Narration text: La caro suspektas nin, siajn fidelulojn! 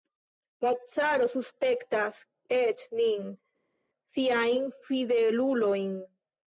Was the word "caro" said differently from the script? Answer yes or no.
no